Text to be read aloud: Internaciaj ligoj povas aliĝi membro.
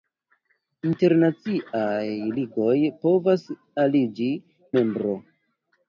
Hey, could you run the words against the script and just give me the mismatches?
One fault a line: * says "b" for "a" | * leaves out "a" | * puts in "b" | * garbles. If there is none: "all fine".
all fine